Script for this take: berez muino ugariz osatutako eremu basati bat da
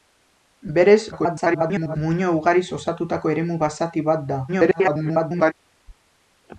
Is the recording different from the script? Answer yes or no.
yes